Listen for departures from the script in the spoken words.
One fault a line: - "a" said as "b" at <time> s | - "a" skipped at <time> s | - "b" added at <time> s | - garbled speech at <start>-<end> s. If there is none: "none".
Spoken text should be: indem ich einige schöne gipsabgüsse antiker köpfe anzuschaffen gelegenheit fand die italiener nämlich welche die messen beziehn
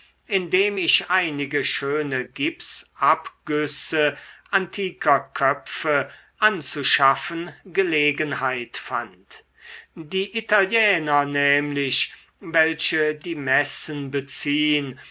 none